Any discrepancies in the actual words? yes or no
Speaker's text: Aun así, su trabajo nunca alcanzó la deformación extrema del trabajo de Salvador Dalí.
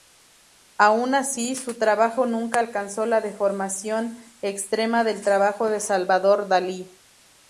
no